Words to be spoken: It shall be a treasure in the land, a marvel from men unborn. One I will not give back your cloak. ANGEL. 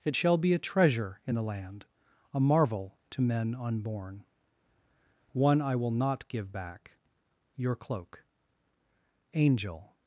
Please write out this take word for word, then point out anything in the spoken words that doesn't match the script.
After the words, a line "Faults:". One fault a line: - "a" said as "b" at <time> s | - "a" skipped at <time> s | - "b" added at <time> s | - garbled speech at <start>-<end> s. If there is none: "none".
It shall be a treasure in the land, a marvel to men unborn. One I will not give back your cloak. ANGEL.
Faults:
- "from" said as "to" at 3.1 s